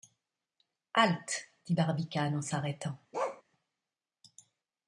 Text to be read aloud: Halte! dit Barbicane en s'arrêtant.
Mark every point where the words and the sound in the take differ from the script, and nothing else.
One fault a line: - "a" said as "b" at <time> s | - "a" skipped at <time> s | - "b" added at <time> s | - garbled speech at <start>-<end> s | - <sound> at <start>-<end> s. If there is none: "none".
- bark at 3.1-3.4 s